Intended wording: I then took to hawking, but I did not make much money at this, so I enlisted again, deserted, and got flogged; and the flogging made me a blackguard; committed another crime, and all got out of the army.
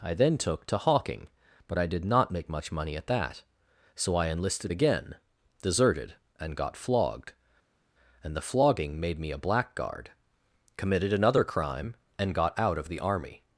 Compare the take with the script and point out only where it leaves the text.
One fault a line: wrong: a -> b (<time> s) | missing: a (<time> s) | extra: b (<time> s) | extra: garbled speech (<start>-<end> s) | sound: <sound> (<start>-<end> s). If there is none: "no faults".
wrong: this -> that (3.1 s)
missing: all (12.3 s)